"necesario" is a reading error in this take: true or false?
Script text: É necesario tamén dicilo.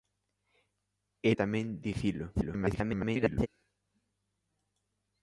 true